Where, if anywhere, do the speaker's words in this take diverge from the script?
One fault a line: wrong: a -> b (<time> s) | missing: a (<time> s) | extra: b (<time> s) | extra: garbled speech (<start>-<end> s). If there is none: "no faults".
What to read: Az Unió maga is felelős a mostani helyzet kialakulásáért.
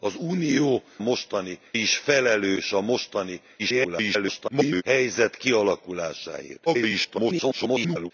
wrong: maga -> mostani (1.0 s)
extra: garbled speech (3.6-4.8 s)
extra: garbled speech (6.7-8.1 s)